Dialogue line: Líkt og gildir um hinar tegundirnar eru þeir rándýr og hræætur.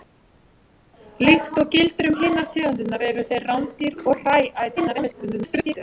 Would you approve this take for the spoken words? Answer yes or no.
no